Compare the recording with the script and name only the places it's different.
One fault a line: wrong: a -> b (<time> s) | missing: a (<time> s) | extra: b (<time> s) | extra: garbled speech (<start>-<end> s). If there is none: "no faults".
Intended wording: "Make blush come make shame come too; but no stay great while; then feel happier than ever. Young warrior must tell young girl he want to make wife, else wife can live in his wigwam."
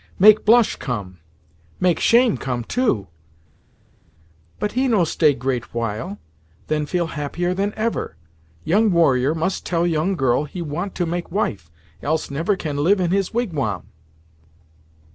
extra: he (4.7 s)
wrong: wife -> never (12.3 s)